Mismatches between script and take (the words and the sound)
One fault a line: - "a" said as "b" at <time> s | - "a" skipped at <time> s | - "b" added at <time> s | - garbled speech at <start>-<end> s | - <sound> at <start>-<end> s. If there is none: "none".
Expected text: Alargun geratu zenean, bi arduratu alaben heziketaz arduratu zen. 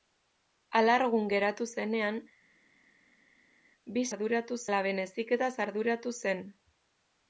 none